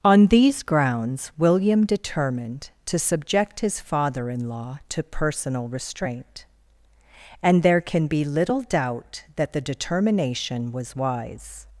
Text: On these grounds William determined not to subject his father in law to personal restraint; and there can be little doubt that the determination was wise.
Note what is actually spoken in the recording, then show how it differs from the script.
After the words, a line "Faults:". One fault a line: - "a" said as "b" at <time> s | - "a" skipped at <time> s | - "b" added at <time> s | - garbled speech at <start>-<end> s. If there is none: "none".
On these grounds William determined to subject his father in law to personal restraint; and there can be little doubt that the determination was wise.
Faults:
- "not" skipped at 2.7 s